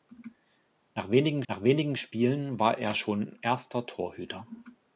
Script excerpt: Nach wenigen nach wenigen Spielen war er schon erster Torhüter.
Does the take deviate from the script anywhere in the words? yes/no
no